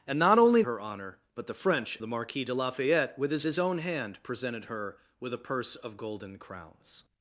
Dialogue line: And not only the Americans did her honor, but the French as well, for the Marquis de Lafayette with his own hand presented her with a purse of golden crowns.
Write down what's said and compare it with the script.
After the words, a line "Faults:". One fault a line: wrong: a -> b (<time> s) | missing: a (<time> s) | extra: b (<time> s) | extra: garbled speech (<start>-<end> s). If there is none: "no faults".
And not only her honor, but the French the Marquis de Lafayette with his his own hand presented her with a purse of golden crowns.
Faults:
missing: the Americans did (0.6 s)
missing: as well for (2.0 s)
extra: his (3.5 s)